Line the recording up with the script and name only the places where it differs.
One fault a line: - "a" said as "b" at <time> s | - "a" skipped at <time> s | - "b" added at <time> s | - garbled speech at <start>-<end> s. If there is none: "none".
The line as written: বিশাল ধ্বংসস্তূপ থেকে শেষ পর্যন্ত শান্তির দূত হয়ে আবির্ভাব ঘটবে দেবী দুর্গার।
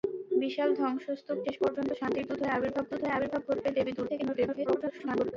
- "থেকে" skipped at 1.4 s
- "দূত হয়ে আবির্ভাব" added at 2.9 s
- garbled speech at 4.1-5.3 s